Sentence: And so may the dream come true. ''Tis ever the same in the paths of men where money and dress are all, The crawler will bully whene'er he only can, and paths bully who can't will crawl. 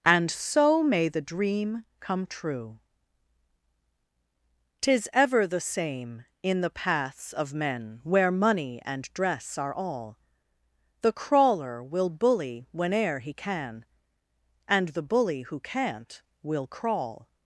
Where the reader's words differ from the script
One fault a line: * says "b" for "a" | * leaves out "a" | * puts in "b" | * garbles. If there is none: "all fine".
* leaves out "only"
* says "the" for "paths"